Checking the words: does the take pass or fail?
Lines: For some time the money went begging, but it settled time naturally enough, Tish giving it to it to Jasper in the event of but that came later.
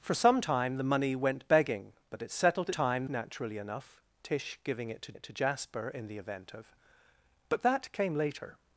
pass